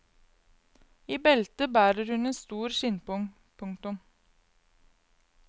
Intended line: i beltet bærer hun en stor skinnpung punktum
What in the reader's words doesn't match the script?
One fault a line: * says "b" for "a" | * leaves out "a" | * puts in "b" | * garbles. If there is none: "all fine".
all fine